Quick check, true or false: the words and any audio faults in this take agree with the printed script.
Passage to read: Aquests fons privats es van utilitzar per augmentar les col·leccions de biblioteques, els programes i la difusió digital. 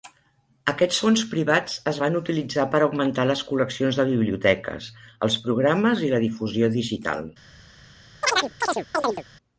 false